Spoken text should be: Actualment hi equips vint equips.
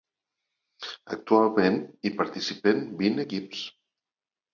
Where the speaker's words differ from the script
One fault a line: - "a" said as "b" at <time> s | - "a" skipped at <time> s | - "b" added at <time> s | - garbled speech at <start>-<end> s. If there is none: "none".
- "equips" said as "participen" at 2.2 s